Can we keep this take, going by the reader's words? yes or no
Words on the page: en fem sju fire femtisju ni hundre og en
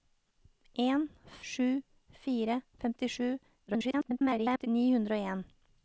no